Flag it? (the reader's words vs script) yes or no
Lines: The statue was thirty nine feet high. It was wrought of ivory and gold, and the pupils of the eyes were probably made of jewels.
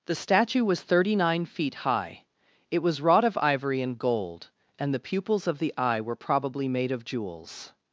yes